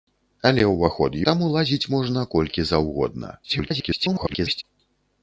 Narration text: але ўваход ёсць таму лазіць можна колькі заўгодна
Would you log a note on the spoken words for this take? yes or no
yes